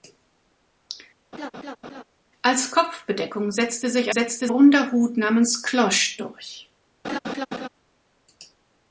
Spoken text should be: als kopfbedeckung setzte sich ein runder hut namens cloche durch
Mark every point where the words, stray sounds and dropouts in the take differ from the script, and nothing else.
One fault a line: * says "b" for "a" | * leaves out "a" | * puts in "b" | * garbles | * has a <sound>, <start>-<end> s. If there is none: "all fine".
* has a laugh, 1.3-2.0 s
* says "setzte" for "ein"
* has a laugh, 7.0-7.7 s